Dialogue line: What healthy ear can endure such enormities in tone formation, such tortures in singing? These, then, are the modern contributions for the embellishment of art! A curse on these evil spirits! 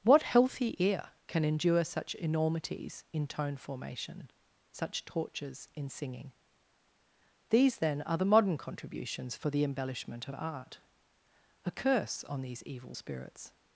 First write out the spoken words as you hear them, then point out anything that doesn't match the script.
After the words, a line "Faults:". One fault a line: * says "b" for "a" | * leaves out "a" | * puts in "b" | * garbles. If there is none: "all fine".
What healthy ear can endure such enormities in tone formation, such tortures in singing? These, then, are the modern contributions for the embellishment of art! A curse on these evil spirits!
Faults:
all fine